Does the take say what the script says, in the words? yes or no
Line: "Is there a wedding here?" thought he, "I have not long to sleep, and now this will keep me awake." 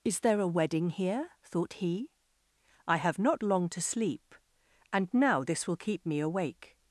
yes